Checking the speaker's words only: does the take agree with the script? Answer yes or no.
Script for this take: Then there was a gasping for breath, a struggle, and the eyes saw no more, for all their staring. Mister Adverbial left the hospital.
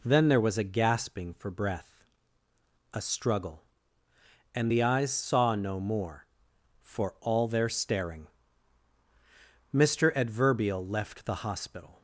yes